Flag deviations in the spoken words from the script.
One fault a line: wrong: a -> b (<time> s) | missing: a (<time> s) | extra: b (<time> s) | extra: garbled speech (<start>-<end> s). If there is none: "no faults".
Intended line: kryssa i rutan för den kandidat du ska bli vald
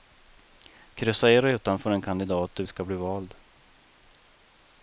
no faults